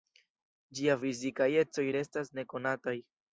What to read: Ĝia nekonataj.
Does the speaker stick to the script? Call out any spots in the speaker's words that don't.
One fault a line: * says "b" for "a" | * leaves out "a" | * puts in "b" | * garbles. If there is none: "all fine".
* puts in "fizikaj ecoj restas"